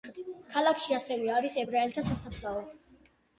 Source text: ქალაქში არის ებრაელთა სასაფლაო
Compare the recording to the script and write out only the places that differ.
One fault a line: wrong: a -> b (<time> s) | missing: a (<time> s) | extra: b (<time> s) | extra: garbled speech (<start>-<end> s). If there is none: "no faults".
extra: ასევე (1.0 s)